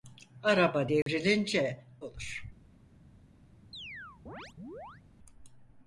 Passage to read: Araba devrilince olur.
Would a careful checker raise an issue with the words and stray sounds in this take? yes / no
yes